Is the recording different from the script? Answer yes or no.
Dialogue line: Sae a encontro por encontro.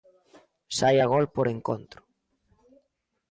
yes